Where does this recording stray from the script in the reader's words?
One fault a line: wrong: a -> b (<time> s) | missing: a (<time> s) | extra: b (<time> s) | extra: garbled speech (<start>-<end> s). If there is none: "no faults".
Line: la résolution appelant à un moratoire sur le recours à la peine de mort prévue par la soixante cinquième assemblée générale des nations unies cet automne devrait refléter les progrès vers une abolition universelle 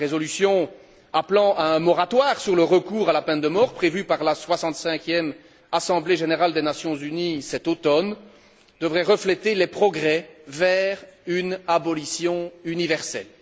no faults